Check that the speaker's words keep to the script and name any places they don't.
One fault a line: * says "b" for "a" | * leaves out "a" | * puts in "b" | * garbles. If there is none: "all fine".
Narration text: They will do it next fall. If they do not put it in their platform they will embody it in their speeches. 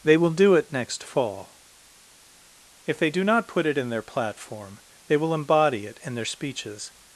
all fine